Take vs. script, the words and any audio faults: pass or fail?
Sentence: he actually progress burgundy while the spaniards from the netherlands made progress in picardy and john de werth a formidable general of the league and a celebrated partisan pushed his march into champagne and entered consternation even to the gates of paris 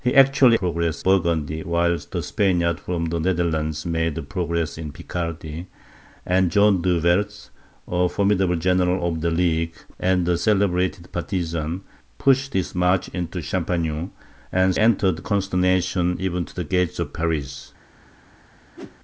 fail